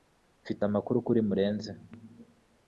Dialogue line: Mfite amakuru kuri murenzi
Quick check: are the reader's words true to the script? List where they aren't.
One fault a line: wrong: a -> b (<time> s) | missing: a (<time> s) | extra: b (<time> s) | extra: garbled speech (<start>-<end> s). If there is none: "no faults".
no faults